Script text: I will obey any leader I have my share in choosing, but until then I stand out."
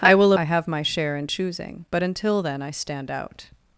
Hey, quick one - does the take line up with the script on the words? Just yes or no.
no